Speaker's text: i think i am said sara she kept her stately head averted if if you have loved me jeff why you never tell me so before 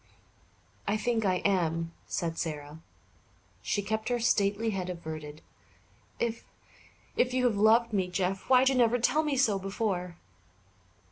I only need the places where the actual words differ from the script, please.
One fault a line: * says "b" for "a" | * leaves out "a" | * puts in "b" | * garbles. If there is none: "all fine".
all fine